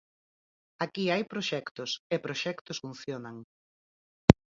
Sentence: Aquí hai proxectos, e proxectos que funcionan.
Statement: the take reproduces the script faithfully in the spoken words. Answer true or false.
false